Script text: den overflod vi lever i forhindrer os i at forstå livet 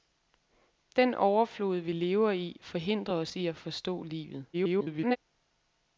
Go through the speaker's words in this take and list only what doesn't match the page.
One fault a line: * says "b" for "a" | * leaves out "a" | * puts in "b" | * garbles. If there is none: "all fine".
* garbles